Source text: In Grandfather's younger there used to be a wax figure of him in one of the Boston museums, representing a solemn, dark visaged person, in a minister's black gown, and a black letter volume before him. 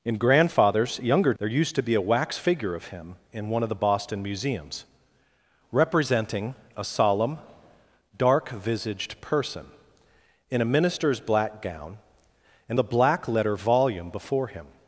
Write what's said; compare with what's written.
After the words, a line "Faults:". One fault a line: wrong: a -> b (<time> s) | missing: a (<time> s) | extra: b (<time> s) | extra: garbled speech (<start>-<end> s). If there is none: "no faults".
In Grandfather's younger there used to be a wax figure of him in one of the Boston museums, representing a solemn, dark visaged person, in a minister's black gown, and a black letter volume before him.
Faults:
no faults